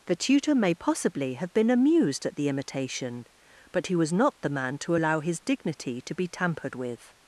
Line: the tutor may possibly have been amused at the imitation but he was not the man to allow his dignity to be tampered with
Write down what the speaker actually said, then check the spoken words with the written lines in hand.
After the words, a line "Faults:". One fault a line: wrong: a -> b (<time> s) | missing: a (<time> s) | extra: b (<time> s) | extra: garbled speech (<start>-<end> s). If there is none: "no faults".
the tutor may possibly have been amused at the imitation but he was not the man to allow his dignity to be tampered with
Faults:
no faults